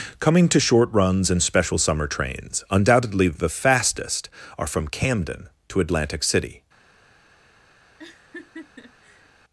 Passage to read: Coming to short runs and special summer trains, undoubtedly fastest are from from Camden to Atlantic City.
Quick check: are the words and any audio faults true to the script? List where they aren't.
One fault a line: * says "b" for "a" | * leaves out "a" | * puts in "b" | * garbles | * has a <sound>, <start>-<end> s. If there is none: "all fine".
* puts in "the"
* leaves out "from"
* has a laugh, 8.0-9.3 s